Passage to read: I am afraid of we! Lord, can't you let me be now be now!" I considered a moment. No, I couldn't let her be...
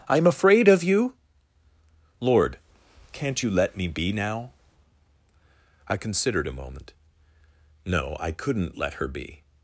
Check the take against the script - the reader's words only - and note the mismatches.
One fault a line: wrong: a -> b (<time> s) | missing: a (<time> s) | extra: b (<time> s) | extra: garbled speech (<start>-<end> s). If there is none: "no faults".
wrong: we -> you (0.8 s)
missing: be now (4.5 s)